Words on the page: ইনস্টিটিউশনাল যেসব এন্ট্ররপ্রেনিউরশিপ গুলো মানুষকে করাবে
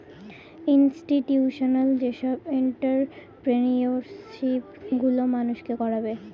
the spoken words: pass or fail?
pass